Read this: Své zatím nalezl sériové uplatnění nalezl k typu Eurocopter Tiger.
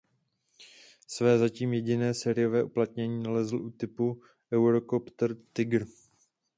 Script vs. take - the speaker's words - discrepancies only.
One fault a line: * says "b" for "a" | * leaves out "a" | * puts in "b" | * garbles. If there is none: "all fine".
* says "jediné" for "nalezl"
* says "u" for "k"